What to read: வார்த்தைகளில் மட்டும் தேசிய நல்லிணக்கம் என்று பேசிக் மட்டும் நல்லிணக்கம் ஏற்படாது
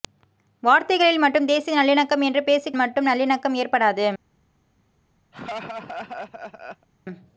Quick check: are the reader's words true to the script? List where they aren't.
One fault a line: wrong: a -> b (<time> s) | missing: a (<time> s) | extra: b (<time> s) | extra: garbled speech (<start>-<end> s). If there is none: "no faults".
no faults